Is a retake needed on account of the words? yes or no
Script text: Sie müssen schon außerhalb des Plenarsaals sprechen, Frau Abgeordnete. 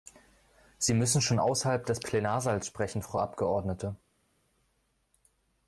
no